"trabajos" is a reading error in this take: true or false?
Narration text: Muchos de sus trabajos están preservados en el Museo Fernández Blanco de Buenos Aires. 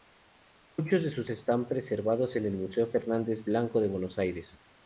true